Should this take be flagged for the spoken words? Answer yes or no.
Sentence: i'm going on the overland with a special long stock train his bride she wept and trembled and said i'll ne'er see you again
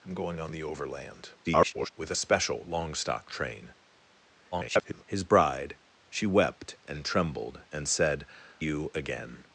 yes